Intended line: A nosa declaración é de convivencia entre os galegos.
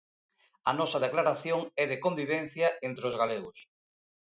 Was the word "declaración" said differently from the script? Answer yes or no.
no